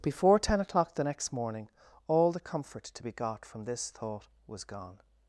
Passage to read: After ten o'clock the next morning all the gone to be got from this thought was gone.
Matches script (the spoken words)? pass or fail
fail